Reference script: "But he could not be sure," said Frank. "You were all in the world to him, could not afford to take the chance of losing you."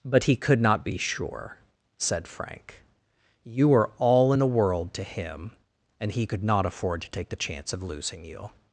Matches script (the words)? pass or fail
fail